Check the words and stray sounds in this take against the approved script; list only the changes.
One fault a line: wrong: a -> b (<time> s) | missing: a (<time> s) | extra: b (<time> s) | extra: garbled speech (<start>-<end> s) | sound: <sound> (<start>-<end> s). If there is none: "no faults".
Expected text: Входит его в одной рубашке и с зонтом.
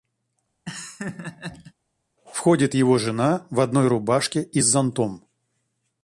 sound: laugh (0.7-1.7 s)
extra: жена (3.0 s)